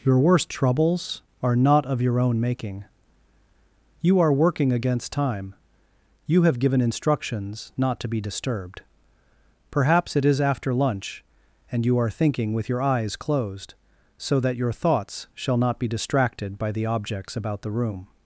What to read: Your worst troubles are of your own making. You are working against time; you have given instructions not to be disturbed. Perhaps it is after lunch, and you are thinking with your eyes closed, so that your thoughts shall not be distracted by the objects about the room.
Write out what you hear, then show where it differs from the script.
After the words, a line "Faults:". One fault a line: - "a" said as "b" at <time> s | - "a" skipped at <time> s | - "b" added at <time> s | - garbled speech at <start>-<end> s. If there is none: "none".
Your worst troubles are not of your own making. You are working against time; you have given instructions not to be disturbed. Perhaps it is after lunch, and you are thinking with your eyes closed, so that your thoughts shall not be distracted by the objects about the room.
Faults:
- "not" added at 1.6 s